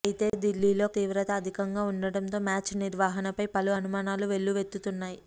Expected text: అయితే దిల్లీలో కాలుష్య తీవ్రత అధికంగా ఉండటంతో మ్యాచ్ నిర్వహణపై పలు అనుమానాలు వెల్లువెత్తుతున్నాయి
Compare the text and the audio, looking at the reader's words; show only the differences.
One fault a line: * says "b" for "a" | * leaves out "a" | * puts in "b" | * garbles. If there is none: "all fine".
* leaves out "కాలుష్య"